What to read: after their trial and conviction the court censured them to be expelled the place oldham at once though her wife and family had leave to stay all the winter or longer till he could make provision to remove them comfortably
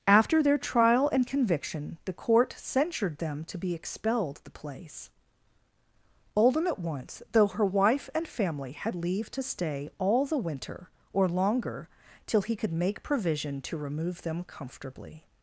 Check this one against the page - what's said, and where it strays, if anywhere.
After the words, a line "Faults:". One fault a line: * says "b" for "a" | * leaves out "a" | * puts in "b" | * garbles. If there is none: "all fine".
after their trial and conviction the court censured them to be expelled the place oldham at once though her wife and family had leave to stay all the winter or longer till he could make provision to remove them comfortably
Faults:
all fine